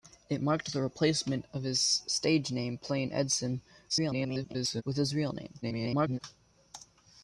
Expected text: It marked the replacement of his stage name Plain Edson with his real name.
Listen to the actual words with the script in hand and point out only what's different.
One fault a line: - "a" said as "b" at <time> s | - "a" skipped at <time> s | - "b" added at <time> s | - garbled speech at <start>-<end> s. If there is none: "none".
- garbled speech at 3.9-4.8 s
- garbled speech at 5.6-6.2 s